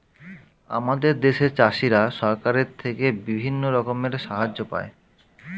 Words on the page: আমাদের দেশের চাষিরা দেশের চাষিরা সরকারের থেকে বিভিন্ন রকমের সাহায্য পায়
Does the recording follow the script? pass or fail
fail